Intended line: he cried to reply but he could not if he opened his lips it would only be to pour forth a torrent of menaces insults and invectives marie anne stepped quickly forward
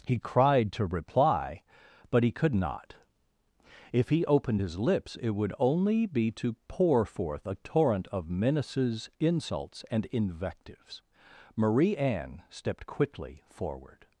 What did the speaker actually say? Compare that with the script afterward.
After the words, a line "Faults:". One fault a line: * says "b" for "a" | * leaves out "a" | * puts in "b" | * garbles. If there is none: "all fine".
he cried to reply but he could not if he opened his lips it would only be to pour forth a torrent of menaces insults and invectives marie anne stepped quickly forward
Faults:
all fine